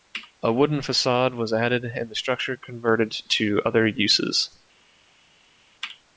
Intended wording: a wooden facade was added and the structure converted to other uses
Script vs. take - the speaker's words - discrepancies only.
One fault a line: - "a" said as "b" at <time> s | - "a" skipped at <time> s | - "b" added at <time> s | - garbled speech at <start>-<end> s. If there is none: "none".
none